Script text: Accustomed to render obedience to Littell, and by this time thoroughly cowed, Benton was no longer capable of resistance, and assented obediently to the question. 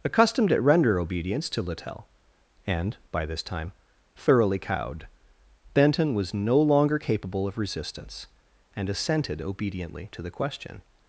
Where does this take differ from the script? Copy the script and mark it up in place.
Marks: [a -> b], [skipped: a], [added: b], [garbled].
Accustomed [to -> at] render obedience to Littell, and by this time thoroughly cowed, Benton was no longer capable of resistance, and assented obediently to the question.